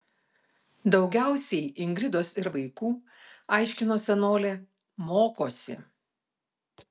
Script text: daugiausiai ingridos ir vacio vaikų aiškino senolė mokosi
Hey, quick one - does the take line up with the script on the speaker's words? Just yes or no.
no